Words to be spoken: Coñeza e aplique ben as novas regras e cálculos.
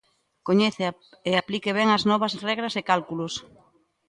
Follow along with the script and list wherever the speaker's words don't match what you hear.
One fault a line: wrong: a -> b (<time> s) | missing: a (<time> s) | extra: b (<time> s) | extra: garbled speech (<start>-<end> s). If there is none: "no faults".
no faults